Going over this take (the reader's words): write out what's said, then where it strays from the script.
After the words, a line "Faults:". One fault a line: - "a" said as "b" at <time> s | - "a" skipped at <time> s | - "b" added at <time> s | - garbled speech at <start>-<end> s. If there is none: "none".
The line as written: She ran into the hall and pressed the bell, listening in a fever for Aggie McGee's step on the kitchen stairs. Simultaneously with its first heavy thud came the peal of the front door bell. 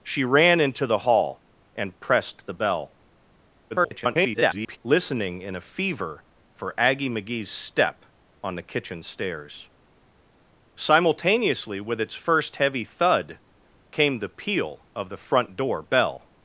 She ran into the hall and pressed the bell, [garbled] listening in a fever for Aggie McGee's step on the kitchen stairs. Simultaneously with its first heavy thud came the peal of the front door bell.
Faults:
- garbled speech at 3.7-4.8 s